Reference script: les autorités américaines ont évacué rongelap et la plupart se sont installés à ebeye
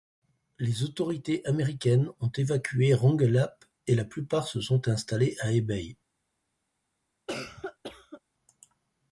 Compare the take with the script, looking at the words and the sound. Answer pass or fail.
fail